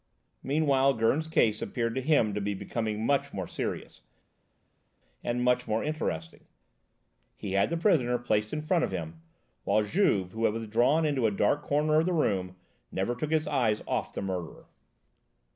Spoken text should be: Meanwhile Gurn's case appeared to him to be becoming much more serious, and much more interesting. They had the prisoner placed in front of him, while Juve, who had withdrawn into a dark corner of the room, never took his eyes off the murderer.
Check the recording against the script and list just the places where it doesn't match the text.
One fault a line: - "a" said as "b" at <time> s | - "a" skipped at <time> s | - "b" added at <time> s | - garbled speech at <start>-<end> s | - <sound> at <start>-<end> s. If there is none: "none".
- "They" said as "He" at 7.3 s